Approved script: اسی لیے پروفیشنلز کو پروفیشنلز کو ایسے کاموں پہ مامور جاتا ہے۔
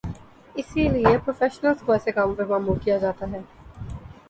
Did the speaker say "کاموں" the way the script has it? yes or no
yes